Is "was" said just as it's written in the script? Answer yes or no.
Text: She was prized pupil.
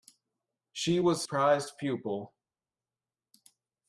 yes